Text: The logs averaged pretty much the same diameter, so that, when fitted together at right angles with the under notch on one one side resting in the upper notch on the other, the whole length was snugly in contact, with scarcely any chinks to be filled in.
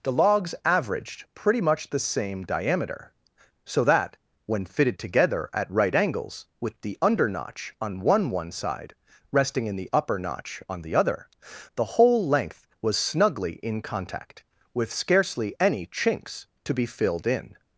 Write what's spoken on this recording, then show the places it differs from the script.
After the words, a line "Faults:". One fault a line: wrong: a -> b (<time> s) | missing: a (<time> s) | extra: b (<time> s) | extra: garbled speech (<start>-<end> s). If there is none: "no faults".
The logs averaged pretty much the same diameter, so that, when fitted together at right angles with the under notch on one one side resting in the upper notch on the other, the whole length was snugly in contact, with scarcely any chinks to be filled in.
Faults:
no faults